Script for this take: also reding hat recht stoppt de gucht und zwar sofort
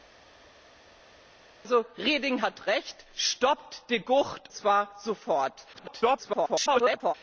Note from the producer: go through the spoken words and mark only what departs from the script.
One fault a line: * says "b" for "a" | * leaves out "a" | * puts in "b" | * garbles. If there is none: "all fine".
* leaves out "und"
* garbles